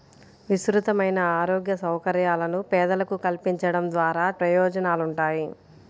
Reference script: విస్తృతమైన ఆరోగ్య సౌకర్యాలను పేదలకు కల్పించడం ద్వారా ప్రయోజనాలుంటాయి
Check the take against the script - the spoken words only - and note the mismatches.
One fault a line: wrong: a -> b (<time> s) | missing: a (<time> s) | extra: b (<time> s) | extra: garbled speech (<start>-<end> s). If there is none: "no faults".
no faults